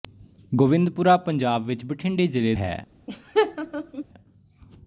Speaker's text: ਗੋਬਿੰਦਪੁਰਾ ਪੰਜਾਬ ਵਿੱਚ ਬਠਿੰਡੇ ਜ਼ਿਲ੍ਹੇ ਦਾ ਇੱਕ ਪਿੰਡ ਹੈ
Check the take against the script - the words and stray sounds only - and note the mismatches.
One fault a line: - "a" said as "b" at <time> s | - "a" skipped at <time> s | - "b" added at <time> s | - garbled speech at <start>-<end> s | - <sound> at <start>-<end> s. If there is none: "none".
- "ਦਾ ਇੱਕ ਪਿੰਡ" skipped at 2.5 s
- laugh at 3.1-4.0 s